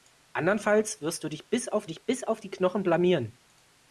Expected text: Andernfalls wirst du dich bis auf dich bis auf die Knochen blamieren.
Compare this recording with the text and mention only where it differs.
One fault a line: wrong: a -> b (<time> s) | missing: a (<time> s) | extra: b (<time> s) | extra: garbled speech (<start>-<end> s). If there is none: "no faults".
no faults